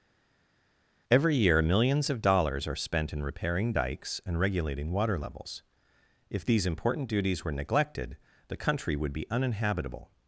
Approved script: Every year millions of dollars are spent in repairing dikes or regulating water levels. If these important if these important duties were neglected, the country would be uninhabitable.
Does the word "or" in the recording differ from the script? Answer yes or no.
yes